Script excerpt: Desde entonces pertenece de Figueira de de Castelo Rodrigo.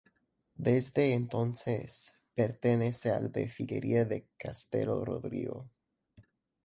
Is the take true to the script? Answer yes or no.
no